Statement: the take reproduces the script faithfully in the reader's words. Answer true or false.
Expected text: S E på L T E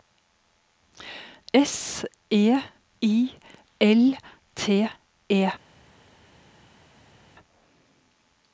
false